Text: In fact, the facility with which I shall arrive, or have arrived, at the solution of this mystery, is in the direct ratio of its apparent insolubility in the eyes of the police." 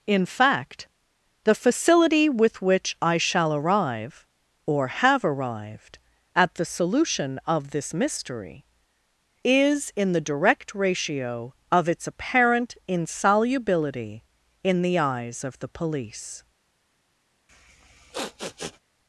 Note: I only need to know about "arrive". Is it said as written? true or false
true